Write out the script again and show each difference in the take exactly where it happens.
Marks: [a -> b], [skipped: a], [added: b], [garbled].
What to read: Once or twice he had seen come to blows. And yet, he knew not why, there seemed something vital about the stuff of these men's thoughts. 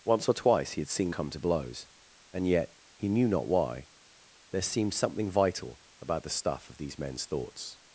Once or twice he had seen come to blows. And yet, he knew not why, there seemed something vital about the stuff of these men's thoughts.